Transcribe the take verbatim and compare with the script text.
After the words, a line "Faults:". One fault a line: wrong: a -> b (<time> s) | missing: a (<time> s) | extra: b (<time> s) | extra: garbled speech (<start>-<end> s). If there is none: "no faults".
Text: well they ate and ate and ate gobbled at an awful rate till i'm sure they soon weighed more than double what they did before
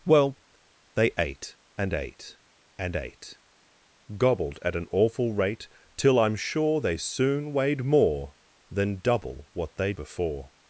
well they ate and ate and ate gobbled at an awful rate till i'm sure they soon weighed more than double what they before
Faults:
missing: did (9.9 s)